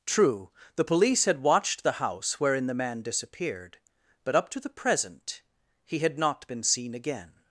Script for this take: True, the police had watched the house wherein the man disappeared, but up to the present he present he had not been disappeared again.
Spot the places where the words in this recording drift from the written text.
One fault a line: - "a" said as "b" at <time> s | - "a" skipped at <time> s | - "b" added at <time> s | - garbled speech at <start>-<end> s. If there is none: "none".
- "present he" skipped at 6.0 s
- "disappeared" said as "seen" at 6.6 s